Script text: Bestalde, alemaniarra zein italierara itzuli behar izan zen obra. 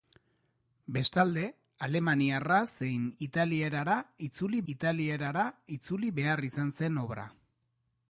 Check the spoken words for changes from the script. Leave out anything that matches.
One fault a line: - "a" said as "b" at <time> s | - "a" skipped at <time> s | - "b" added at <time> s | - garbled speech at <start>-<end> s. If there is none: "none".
- "italierara itzuli" added at 4.7 s